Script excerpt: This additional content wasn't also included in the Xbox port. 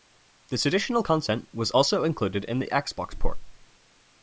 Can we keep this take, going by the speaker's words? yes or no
no